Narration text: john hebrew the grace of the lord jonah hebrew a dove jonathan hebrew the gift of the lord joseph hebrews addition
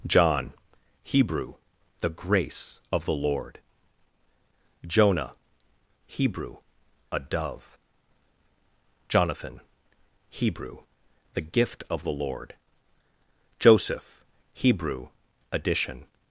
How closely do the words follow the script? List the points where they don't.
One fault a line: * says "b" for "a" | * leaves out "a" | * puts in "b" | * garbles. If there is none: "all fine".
* says "hebrew" for "hebrews"